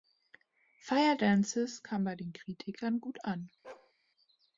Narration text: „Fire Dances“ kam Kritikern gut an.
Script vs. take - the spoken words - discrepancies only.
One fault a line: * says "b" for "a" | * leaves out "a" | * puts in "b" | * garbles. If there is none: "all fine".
* puts in "bei den"